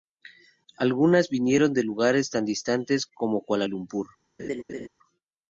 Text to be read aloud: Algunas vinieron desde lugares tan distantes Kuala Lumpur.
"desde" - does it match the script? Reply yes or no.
no